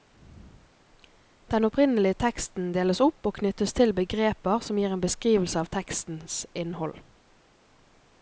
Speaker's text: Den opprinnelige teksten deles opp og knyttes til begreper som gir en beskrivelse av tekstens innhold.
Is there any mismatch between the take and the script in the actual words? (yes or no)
no